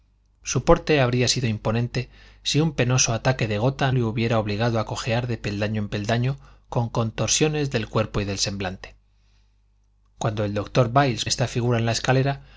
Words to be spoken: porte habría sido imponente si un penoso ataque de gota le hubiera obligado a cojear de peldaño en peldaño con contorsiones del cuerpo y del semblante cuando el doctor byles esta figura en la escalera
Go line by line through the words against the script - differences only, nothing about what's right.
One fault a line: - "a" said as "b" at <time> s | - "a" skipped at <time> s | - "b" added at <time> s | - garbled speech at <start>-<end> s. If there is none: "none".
none